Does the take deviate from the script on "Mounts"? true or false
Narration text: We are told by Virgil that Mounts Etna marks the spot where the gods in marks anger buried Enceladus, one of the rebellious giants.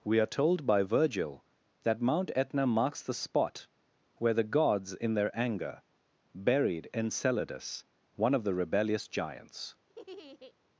true